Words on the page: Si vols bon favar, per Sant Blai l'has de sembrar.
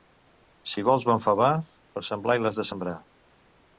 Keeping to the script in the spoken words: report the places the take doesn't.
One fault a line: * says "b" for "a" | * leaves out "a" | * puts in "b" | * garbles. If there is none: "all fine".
all fine